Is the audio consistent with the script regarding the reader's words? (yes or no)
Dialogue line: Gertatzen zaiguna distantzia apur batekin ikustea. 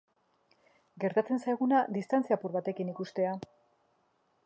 yes